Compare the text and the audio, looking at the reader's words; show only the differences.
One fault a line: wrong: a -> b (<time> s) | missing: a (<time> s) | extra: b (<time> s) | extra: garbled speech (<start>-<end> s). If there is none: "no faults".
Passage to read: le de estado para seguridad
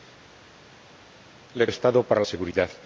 no faults